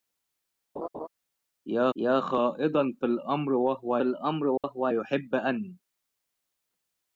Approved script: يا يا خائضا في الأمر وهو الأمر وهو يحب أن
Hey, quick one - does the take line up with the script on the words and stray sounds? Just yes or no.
no